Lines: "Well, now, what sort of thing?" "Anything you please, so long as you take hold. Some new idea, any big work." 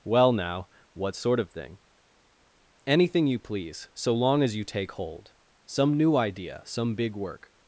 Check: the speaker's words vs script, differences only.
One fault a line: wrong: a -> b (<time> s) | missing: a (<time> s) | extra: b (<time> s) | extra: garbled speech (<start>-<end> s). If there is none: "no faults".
wrong: any -> some (6.6 s)